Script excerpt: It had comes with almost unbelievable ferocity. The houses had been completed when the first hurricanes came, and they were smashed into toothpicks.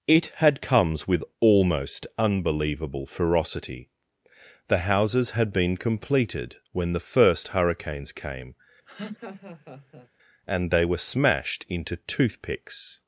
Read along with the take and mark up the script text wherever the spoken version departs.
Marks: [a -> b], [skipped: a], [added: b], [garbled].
It had comes with almost unbelievable ferocity. The houses had been completed when the first hurricanes came, and they were smashed into toothpicks.